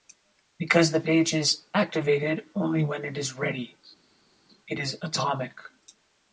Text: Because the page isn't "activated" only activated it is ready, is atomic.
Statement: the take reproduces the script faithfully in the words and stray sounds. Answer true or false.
false